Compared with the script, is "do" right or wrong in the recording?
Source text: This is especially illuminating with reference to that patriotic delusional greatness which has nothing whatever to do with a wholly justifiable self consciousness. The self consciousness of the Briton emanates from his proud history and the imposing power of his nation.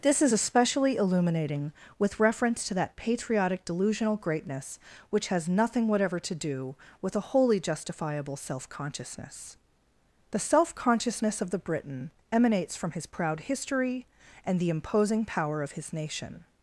right